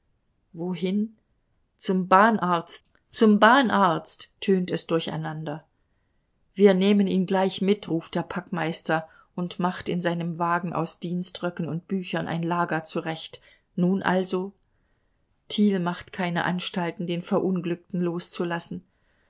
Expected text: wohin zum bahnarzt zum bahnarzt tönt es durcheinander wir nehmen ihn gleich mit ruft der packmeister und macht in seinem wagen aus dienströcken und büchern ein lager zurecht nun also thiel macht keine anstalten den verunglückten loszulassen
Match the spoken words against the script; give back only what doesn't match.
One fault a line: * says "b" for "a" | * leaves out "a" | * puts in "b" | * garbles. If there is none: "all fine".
all fine